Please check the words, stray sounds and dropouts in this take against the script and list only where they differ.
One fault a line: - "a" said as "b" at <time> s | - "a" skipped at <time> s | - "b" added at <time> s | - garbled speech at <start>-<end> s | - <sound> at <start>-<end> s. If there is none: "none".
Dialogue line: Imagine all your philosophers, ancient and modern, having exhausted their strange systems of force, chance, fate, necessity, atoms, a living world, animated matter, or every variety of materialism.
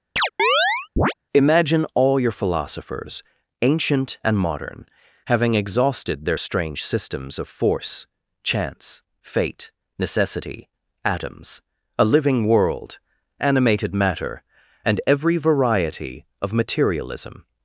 - chirp at 0.2-1.1 s
- "or" said as "and" at 14.8 s